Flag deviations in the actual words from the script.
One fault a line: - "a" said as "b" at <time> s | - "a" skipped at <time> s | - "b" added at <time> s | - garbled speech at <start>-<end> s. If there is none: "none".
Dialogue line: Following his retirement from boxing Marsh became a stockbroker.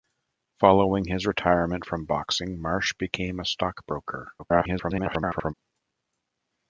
- garbled speech at 4.4-5.5 s